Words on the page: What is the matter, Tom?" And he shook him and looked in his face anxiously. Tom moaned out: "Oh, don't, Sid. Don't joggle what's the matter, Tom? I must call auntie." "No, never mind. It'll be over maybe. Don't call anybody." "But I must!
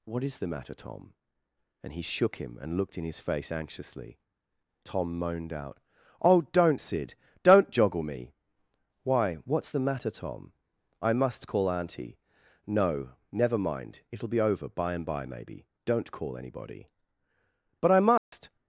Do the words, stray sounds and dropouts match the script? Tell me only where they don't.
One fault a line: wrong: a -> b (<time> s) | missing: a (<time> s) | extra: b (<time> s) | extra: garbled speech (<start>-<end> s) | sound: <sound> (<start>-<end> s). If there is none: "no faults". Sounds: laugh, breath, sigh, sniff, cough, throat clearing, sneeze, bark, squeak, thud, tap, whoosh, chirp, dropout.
extra: me Why (8.0 s)
extra: by and by (14.7 s)
sound: dropout (18.2-18.3 s)